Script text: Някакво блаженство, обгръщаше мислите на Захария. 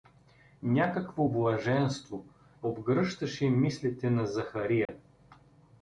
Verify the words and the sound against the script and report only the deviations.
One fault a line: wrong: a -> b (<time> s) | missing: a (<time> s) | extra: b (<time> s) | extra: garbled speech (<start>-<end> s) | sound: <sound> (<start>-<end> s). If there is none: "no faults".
sound: dropout (4.9-4.9 s)